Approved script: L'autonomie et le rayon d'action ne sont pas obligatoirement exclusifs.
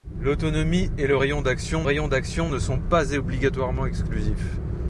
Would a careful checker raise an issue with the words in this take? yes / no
yes